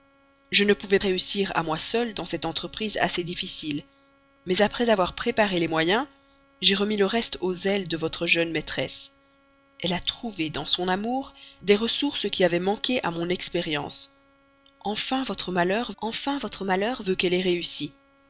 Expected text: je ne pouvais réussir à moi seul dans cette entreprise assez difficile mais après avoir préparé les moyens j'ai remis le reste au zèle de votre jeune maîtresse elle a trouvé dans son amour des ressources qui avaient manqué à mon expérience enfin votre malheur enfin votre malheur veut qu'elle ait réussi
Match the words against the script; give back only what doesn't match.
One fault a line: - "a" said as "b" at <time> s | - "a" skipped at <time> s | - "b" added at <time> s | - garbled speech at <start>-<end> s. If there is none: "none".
none